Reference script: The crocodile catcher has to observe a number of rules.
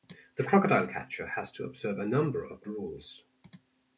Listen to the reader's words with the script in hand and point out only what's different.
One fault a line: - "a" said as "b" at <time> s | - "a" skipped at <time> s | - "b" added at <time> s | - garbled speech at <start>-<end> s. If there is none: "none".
none